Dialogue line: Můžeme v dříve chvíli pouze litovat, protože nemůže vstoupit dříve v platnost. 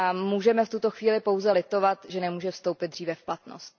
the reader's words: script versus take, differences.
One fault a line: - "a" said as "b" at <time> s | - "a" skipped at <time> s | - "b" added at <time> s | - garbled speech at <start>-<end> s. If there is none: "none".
- "dříve" said as "tuto" at 0.7 s
- "protože" said as "že" at 2.1 s